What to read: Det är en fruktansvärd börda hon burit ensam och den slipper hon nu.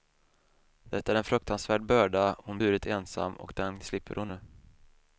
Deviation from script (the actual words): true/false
false